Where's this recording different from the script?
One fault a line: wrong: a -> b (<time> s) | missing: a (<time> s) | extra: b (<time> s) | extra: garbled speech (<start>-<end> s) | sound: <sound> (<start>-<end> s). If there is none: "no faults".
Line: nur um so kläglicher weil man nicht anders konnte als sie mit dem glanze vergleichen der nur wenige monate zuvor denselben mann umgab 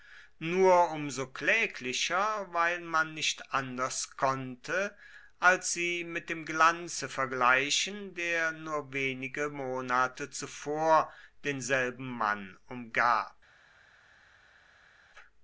no faults